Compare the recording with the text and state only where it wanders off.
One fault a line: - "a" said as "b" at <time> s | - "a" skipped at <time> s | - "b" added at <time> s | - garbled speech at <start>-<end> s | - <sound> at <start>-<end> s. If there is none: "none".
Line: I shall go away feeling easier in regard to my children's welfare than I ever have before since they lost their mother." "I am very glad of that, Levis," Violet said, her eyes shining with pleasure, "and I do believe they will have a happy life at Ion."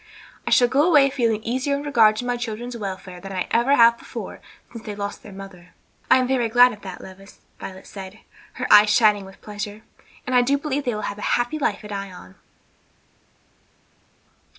- "than" added at 3.3 s